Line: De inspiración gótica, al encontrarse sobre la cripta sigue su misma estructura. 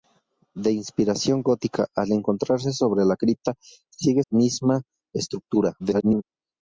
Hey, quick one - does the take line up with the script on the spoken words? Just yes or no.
no